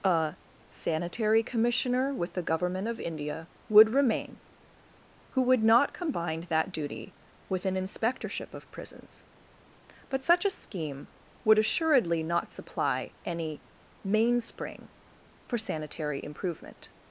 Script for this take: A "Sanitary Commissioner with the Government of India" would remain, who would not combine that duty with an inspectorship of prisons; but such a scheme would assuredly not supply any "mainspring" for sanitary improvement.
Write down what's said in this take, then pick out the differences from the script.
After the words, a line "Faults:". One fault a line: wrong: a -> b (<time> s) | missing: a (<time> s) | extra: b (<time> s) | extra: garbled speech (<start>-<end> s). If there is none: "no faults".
A "Sanitary Commissioner with the Government of India" would remain, who would not combine that duty with an inspectorship of prisons; but such a scheme would assuredly not supply any "mainspring" for sanitary improvement.
Faults:
no faults